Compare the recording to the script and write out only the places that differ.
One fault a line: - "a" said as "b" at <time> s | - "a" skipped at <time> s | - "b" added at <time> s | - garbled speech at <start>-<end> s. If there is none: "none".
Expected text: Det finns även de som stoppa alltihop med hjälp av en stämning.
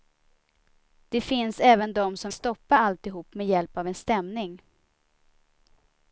none